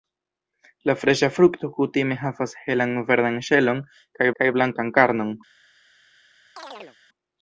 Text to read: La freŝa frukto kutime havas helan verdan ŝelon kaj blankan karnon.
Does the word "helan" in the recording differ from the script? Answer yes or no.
no